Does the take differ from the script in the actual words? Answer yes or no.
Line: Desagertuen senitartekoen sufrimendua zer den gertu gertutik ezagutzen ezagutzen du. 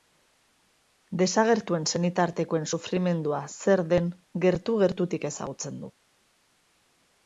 yes